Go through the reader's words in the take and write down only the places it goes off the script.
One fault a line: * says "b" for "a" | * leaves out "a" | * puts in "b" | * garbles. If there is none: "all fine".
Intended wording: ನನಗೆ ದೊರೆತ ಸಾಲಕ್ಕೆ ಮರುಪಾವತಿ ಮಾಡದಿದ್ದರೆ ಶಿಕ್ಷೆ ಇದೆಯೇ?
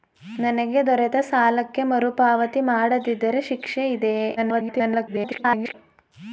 * garbles